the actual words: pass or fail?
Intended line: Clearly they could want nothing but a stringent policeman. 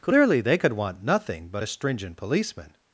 pass